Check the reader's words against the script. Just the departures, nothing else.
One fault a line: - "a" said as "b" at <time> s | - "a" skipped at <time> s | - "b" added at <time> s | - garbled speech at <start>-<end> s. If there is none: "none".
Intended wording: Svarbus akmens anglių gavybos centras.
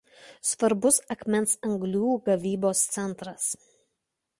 none